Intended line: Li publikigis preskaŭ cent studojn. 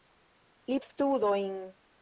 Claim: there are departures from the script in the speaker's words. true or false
true